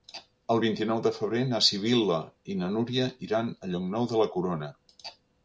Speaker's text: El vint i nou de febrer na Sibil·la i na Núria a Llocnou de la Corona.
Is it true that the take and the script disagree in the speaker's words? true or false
true